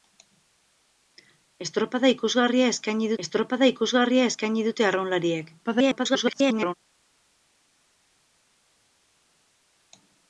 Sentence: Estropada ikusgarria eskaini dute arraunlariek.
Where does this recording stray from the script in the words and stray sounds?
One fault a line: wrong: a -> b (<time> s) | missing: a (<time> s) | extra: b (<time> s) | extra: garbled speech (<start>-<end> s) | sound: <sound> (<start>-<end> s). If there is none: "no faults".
extra: estropada ikusgarria eskaini (3.3 s)
extra: garbled speech (5.6-6.7 s)